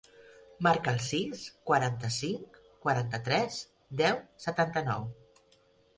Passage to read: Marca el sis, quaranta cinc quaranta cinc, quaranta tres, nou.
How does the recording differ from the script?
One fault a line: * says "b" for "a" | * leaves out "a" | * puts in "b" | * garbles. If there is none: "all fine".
* says "tres deu setanta" for "cinc quaranta tres"